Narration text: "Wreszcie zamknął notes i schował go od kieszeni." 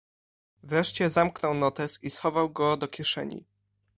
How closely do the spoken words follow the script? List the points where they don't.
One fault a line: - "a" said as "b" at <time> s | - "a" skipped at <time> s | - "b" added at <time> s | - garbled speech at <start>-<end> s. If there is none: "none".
- "od" said as "do" at 2.8 s